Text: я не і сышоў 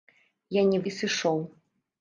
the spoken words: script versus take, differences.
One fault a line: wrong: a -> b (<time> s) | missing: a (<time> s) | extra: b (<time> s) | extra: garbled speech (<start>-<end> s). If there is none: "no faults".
no faults